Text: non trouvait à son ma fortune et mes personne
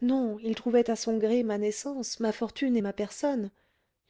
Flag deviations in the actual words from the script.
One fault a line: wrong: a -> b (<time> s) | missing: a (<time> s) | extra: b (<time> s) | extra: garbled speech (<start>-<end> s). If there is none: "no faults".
extra: il (0.4 s)
extra: gré (1.2 s)
extra: naissance ma (1.6 s)
wrong: mes -> ma (2.8 s)